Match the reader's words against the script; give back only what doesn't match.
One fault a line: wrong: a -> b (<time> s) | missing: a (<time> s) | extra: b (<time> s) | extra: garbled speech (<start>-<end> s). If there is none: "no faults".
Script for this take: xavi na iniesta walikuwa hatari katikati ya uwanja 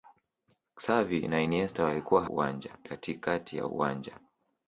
wrong: hatari -> uwanja (2.2 s)